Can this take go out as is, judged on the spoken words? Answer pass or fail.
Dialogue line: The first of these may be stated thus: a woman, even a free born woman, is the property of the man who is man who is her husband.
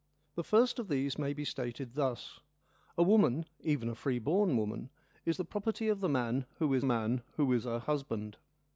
pass